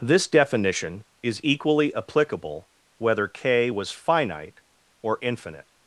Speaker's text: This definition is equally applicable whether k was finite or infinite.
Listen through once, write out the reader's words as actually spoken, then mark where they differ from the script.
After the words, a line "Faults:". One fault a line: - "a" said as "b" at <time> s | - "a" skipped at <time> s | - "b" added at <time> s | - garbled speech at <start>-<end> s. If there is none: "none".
This definition is equally applicable whether k was finite or infinite.
Faults:
none